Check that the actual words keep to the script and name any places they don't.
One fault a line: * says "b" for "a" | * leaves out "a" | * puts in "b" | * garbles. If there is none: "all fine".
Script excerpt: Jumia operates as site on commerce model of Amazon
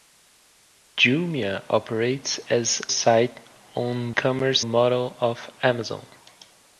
all fine